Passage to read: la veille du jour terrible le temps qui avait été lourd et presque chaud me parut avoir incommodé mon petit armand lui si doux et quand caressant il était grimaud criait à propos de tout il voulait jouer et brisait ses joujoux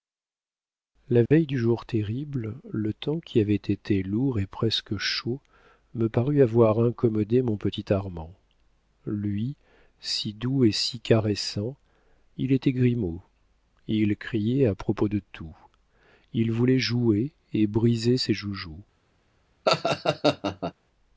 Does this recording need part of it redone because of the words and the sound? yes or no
yes